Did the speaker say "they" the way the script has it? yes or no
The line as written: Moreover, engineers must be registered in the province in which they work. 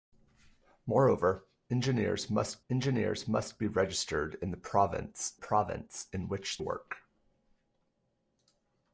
no